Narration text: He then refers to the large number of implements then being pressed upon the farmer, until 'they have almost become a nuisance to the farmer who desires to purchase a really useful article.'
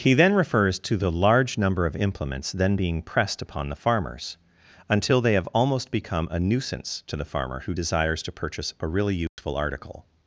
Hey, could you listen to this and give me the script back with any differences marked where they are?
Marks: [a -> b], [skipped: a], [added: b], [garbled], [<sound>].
He then refers to the large number of implements then being pressed upon the [farmer, -> farmers] until 'they have almost become a nuisance to the farmer who desires to purchase a really useful [dropout] article.'